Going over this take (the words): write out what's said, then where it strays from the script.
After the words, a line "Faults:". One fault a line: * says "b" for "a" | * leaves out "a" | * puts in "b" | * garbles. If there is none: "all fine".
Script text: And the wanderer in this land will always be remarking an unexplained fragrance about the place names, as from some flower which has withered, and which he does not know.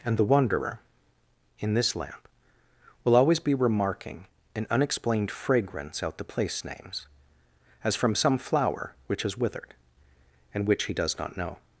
And the wanderer in this lamp will always be remarking an unexplained fragrance out the place names, as from some flower which has withered, and which he does not know.
Faults:
* says "lamp" for "land"
* says "out" for "about"